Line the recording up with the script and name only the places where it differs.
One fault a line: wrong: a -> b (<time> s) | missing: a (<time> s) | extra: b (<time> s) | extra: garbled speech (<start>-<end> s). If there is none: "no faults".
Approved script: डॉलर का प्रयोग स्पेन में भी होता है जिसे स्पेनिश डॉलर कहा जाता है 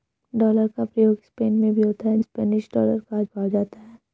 missing: जिसे (2.2 s)
extra: कहा (3.2 s)